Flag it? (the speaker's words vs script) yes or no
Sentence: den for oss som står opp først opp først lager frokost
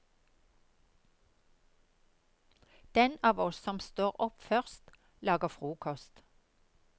yes